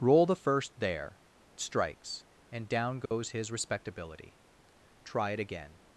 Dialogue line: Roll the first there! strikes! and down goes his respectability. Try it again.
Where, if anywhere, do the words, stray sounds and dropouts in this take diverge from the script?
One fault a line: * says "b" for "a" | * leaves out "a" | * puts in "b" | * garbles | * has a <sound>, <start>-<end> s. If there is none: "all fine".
* has a dropout, 3.1-3.1 s